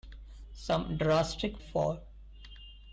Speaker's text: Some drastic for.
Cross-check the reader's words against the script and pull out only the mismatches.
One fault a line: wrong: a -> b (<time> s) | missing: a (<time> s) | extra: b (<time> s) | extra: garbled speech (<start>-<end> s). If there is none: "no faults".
no faults